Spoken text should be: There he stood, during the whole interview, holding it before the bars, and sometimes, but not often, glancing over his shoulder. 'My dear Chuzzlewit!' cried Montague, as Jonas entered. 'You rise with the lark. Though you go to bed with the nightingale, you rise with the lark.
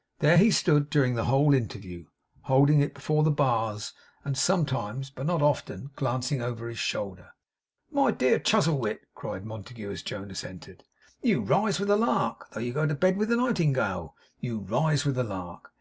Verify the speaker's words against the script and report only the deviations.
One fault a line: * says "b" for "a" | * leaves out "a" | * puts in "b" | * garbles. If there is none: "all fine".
all fine